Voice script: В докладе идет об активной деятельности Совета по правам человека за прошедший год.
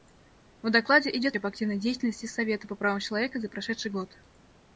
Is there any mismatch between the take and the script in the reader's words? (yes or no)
no